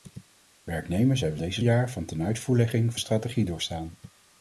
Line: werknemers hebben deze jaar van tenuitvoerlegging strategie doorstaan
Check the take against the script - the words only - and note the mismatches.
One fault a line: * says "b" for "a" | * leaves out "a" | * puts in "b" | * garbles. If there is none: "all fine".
all fine